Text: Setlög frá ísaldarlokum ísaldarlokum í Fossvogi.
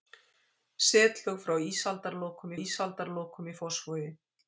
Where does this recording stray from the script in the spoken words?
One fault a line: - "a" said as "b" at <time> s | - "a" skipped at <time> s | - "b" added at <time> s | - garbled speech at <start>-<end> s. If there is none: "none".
none